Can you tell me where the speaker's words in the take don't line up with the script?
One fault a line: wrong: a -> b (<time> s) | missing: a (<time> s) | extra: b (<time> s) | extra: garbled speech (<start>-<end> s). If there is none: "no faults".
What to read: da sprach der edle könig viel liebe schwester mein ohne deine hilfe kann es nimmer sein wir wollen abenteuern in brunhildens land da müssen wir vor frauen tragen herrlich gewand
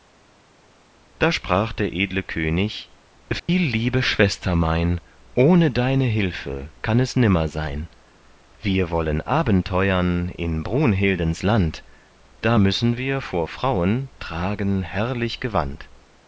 no faults